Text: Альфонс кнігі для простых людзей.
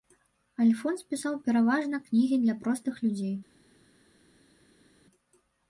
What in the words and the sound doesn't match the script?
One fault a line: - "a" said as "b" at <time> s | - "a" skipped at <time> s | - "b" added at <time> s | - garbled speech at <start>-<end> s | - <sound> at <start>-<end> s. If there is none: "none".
- "пісаў пераважна" added at 1.1 s